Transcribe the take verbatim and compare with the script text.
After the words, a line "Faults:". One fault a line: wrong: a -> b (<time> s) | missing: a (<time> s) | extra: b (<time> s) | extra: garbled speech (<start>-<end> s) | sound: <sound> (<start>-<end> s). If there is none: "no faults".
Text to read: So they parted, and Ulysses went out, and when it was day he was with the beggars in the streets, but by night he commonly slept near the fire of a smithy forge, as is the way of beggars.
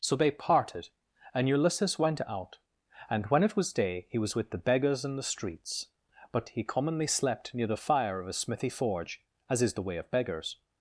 So they parted, and Ulysses went out, and when it was day he was with the beggars in the streets, but he commonly slept near the fire of a smithy forge, as is the way of beggars.
Faults:
missing: by night (6.5 s)